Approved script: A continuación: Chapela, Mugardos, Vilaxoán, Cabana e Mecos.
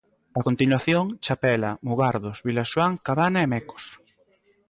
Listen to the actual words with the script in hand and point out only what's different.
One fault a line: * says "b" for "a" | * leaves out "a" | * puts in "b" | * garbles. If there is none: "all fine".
all fine